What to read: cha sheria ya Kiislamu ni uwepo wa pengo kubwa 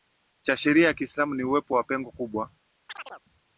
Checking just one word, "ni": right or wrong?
right